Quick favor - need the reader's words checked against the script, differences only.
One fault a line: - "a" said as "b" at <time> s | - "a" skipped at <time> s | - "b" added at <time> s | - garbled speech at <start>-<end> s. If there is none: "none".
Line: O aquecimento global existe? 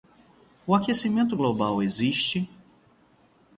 none